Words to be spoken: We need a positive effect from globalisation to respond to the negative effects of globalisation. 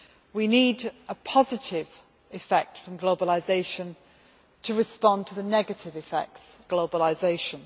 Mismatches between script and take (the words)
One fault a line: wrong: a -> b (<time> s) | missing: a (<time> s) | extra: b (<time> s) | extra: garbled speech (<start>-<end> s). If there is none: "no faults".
missing: of (6.4 s)